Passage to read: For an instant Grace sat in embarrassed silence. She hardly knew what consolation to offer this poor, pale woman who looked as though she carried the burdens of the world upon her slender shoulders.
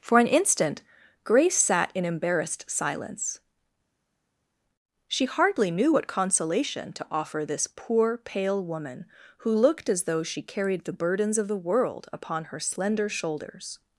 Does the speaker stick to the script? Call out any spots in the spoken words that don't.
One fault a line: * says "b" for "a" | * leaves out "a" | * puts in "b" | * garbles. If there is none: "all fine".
all fine